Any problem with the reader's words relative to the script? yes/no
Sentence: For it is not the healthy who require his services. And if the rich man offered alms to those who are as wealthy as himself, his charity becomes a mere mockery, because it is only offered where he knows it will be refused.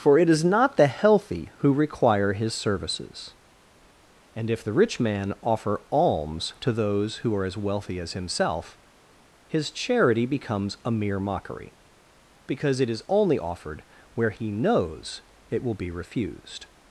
yes